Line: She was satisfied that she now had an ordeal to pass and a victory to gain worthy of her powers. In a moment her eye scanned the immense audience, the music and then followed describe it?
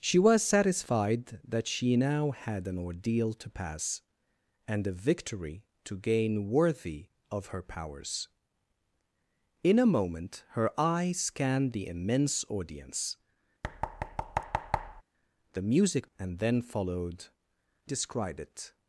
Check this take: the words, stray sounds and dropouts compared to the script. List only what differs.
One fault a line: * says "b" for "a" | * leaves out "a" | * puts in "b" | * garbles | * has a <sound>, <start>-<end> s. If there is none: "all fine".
* has a thud, 13.6-15.0 s